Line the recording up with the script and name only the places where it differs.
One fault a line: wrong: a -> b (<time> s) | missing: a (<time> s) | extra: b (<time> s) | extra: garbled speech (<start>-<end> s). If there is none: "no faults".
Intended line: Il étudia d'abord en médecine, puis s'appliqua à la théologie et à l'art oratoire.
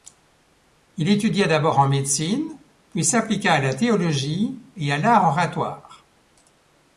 no faults